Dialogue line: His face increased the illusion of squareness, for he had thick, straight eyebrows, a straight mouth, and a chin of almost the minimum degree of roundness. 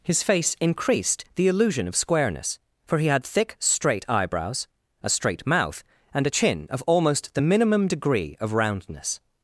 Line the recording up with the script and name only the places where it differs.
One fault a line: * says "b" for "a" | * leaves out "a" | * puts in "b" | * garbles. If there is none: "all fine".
all fine